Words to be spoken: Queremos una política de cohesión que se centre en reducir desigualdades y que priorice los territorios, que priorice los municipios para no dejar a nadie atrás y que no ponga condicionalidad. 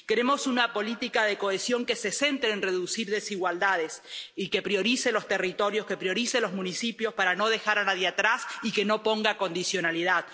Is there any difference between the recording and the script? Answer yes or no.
no